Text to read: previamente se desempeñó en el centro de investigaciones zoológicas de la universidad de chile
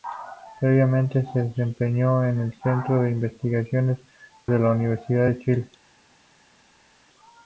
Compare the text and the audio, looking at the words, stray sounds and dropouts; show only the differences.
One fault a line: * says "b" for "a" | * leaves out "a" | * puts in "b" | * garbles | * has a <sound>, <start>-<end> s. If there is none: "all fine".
* leaves out "zoológicas"